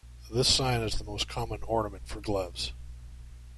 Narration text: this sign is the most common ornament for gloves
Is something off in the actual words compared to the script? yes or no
no